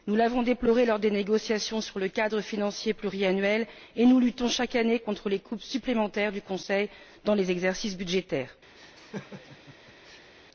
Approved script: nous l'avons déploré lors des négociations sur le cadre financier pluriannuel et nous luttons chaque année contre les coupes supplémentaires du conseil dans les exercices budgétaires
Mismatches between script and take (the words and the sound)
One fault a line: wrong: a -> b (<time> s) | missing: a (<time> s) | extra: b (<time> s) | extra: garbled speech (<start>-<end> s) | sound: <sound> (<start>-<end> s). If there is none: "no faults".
sound: laugh (8.8-10.3 s)